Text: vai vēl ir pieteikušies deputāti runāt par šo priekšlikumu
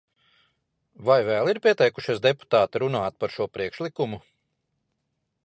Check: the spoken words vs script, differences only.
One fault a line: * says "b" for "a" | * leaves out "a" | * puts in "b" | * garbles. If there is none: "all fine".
all fine